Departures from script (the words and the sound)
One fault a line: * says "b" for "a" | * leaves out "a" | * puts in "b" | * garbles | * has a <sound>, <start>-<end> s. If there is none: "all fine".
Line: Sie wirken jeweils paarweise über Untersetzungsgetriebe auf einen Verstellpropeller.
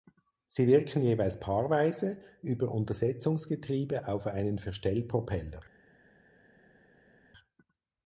all fine